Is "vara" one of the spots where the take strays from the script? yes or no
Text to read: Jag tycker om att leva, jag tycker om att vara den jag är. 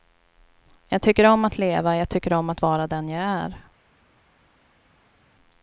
no